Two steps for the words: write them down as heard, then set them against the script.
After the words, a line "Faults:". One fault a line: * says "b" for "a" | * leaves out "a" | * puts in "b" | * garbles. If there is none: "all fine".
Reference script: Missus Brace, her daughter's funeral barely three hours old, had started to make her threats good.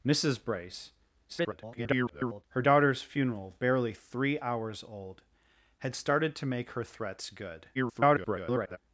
Missus Brace, [garbled] her daughter's funeral barely three hours old, had started to make her threats good. [garbled]
Faults:
* garbles
* garbles